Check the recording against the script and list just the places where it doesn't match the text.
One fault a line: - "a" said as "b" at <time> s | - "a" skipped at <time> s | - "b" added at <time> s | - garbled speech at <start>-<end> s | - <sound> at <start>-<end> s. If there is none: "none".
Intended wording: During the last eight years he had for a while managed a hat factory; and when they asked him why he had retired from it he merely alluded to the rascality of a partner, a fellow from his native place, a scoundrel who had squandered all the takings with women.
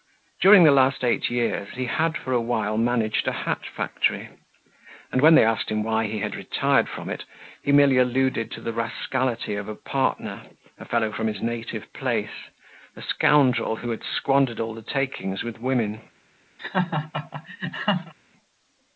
- laugh at 16.6-18.1 s